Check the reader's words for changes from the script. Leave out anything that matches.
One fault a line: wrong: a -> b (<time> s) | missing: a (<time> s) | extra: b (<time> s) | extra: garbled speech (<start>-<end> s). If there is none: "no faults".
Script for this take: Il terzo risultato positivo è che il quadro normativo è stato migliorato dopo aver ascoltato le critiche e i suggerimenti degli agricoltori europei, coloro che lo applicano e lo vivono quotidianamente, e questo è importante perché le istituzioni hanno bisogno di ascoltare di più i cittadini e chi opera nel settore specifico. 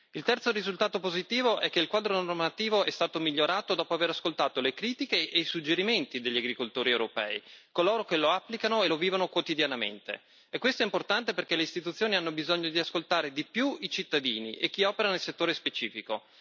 no faults